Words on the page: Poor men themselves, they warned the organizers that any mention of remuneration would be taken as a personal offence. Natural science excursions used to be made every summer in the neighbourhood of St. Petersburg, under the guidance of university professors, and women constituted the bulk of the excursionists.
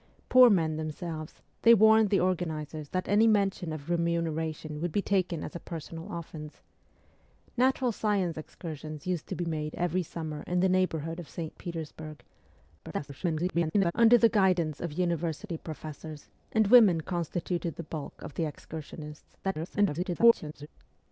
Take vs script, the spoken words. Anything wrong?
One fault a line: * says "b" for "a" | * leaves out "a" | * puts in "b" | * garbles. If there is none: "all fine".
* garbles
* garbles